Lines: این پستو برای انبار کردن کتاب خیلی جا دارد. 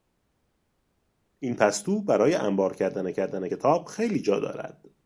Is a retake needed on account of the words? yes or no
yes